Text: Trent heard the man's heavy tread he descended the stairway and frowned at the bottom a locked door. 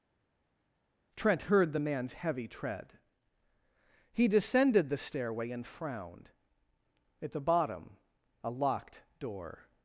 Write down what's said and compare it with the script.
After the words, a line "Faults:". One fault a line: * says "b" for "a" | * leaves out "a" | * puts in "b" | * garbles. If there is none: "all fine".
Trent heard the man's heavy tread he descended the stairway and frowned at the bottom a locked door.
Faults:
all fine